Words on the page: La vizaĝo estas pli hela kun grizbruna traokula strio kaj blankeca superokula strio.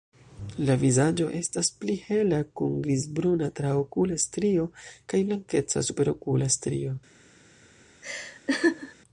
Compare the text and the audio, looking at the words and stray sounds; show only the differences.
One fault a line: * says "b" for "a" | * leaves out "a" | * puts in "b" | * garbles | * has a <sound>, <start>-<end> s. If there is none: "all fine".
* has a laugh, 8.0-9.0 s